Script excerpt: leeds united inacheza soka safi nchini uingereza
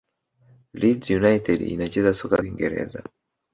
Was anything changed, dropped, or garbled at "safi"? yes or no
yes